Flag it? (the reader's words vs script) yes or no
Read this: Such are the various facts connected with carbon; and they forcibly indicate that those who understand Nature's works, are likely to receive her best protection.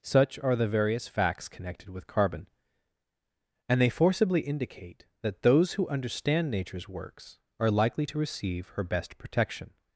no